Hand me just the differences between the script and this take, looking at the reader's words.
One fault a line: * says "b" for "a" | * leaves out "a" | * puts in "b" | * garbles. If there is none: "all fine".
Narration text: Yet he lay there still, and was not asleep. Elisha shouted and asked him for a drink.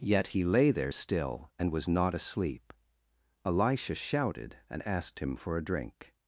all fine